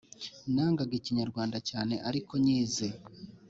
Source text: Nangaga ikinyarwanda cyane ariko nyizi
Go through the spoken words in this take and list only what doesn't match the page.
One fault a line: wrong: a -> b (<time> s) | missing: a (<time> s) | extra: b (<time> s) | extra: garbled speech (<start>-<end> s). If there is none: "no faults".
no faults